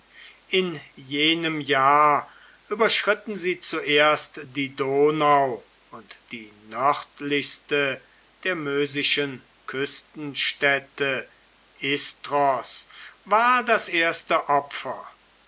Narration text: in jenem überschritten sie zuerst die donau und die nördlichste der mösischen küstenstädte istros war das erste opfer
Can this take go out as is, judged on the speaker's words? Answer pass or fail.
fail